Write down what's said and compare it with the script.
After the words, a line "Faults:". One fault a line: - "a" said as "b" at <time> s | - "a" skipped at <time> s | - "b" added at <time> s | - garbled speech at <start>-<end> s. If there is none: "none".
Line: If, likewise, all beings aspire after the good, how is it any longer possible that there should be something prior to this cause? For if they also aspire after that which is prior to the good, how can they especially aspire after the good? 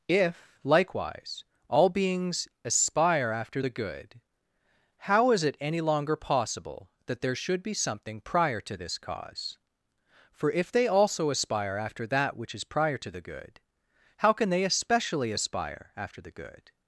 If, likewise, all beings aspire after the good, how is it any longer possible that there should be something prior to this cause? For if they also aspire after that which is prior to the good, how can they especially aspire after the good?
Faults:
none